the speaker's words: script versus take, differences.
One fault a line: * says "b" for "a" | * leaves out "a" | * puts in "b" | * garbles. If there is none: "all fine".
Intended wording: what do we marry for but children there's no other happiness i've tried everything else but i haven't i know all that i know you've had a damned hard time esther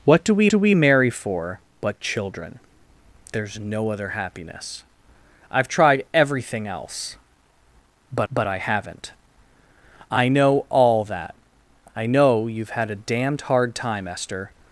* puts in "do we"
* puts in "but"